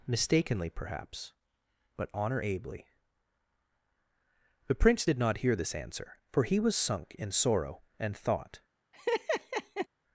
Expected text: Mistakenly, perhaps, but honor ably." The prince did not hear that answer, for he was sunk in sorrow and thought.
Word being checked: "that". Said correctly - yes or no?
no